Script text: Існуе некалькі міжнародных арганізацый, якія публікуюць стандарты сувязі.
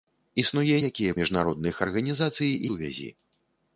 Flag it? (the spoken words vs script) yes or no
yes